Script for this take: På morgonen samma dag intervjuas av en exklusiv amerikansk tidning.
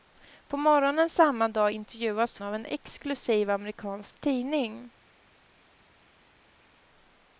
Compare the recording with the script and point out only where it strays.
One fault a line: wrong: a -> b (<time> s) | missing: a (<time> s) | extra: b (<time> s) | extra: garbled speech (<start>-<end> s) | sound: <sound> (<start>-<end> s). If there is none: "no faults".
no faults